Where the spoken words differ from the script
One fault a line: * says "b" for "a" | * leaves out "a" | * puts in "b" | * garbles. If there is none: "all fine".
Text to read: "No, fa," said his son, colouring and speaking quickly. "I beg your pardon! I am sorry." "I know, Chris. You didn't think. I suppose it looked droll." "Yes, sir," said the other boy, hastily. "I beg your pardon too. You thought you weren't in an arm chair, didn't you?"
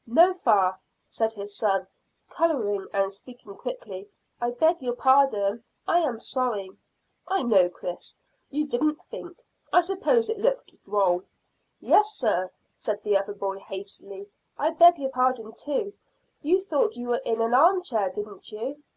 * says "were" for "weren't"